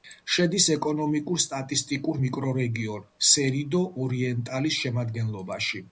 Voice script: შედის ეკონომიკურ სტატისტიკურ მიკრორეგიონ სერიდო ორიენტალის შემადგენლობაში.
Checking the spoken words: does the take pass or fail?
pass